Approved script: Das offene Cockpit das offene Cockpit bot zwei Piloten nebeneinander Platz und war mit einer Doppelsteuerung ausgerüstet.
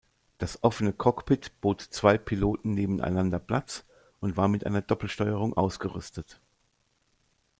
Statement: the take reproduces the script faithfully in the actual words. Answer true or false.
false